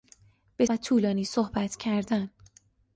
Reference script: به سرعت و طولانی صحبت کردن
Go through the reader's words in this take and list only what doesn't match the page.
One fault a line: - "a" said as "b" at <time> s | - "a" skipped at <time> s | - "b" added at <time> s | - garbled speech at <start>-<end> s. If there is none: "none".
- "سرعت" skipped at 0.7 s